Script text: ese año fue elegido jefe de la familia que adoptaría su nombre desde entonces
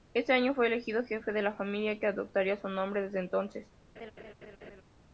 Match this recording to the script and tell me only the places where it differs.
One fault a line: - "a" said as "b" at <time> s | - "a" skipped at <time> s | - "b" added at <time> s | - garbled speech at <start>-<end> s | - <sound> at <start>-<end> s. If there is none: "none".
- laugh at 4.0-4.8 s